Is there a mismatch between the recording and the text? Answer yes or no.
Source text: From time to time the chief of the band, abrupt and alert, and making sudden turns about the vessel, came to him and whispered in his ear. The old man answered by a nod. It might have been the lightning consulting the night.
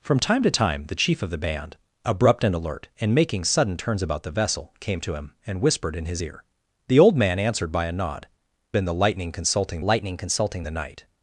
yes